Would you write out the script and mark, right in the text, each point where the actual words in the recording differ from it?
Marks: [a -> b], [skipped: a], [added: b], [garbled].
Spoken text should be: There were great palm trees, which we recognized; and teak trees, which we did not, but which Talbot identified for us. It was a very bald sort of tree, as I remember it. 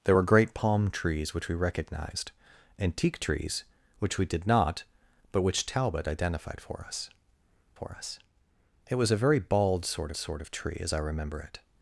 There were great palm trees, which we recognized; and teak trees, which we did not, but which Talbot identified for us. [added: for us] It was a very bald sort [added: sort] of tree, as I remember it.